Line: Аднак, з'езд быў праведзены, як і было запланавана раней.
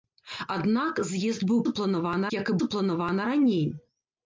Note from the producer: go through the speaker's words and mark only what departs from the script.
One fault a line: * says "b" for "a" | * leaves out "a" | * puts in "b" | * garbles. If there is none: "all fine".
* says "запланавана" for "праведзены"
* leaves out "было"